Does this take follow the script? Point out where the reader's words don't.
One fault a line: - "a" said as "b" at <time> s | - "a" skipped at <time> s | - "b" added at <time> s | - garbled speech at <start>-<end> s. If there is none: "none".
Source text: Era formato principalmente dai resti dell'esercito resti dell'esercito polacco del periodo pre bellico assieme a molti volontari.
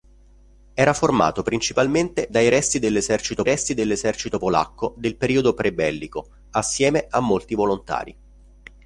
none